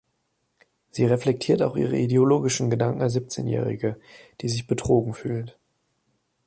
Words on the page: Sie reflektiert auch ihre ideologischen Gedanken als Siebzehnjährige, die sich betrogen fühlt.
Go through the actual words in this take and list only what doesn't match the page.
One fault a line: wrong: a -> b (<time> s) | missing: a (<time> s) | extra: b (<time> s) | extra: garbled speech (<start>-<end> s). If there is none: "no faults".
no faults